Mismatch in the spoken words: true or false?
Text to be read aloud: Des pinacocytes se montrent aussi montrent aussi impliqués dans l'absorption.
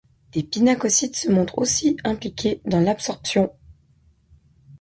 true